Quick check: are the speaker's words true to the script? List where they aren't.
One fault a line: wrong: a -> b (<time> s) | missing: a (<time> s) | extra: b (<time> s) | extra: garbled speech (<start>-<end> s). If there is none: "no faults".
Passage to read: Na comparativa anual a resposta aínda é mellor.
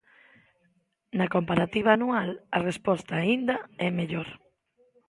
no faults